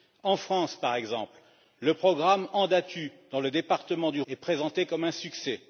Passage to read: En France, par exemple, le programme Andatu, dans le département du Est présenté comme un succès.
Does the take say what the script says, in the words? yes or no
yes